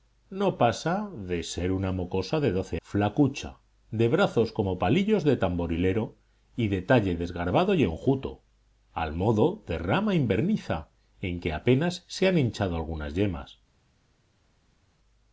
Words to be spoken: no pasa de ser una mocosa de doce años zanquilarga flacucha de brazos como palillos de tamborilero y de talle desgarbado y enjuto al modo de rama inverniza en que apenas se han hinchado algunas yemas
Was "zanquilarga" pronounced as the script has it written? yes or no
no